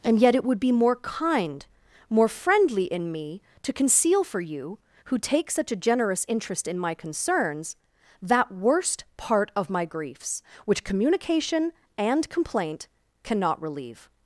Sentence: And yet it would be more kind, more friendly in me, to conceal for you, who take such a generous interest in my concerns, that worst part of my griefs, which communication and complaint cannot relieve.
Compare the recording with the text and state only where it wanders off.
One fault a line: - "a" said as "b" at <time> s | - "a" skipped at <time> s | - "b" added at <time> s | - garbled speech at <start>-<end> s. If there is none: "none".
none